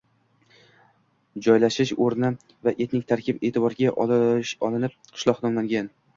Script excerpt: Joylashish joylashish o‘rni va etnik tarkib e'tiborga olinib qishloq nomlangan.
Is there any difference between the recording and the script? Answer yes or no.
yes